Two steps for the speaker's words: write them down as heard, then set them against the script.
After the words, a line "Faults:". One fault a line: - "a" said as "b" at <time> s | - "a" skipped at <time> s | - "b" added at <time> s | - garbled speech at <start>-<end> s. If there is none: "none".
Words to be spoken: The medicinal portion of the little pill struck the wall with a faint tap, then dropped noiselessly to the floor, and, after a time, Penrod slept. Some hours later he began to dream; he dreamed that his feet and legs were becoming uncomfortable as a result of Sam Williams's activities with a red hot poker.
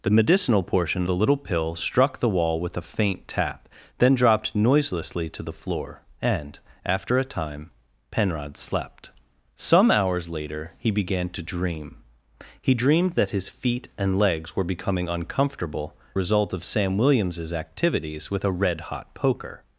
The medicinal portion the little pill struck the wall with a faint tap, then dropped noiselessly to the floor, and, after a time, Penrod slept. Some hours later he began to dream; he dreamed that his feet and legs were becoming uncomfortable result of Sam Williams's activities with a red hot poker.
Faults:
- "of" skipped at 1.1 s
- "as a" skipped at 15.9 s